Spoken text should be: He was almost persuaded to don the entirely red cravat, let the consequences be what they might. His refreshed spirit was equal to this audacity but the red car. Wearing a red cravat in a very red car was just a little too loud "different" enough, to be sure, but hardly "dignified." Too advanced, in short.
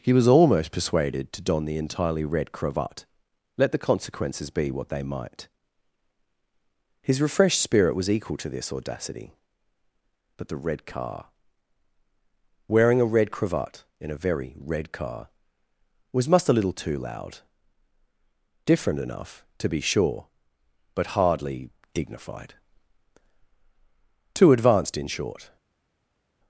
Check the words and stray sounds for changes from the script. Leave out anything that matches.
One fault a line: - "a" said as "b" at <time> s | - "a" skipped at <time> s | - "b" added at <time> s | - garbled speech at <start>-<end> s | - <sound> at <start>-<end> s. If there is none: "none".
- "just" said as "must" at 16.3 s